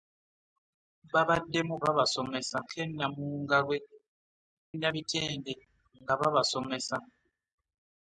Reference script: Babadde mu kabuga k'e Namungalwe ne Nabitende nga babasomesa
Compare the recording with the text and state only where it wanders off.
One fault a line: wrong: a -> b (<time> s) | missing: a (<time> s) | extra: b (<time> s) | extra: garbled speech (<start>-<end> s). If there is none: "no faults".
wrong: kabuga -> babasomesa (1.8 s)
missing: ne (3.8 s)